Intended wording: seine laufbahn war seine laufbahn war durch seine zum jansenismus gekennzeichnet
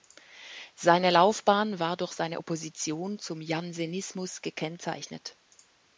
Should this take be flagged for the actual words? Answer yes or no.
yes